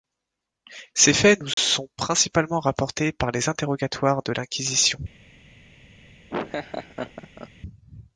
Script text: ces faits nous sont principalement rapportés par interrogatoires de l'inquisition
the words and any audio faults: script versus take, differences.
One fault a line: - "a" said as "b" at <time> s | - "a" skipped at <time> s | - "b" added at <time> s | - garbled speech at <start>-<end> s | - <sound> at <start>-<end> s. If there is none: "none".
- dropout at 1.5-1.6 s
- "les" added at 3.3 s
- laugh at 6.3-7.5 s